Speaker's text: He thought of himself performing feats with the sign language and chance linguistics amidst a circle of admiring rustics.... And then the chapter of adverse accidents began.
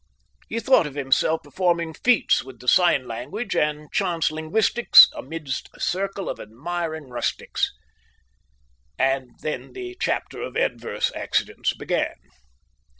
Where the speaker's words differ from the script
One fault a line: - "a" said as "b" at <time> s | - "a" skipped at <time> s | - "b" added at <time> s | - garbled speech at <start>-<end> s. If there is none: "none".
none